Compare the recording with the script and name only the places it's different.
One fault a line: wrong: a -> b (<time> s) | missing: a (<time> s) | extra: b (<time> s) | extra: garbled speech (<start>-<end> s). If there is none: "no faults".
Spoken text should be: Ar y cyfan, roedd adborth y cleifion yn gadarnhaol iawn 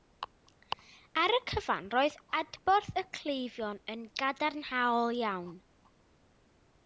no faults